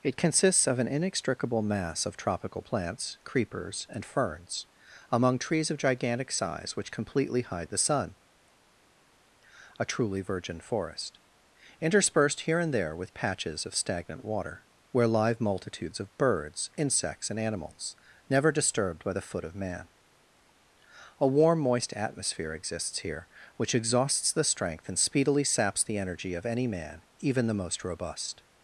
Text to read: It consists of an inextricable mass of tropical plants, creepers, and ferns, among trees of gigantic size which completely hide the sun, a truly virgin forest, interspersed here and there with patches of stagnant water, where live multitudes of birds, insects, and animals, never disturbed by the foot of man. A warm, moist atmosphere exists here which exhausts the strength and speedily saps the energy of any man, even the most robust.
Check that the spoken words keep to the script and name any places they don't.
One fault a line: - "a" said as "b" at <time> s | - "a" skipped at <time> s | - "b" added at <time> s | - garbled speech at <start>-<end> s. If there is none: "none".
none